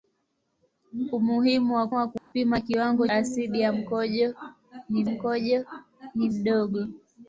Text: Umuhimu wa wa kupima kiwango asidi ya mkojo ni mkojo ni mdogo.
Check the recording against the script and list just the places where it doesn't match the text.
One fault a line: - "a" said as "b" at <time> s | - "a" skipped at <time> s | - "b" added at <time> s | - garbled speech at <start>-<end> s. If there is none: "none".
none